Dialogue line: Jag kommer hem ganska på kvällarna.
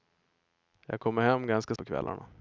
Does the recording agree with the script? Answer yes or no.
yes